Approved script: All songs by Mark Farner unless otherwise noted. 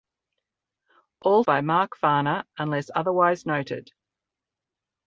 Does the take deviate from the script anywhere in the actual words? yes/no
yes